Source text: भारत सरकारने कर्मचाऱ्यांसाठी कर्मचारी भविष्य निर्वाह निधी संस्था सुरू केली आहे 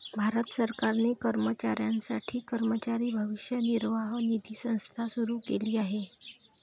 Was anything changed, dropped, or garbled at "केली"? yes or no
no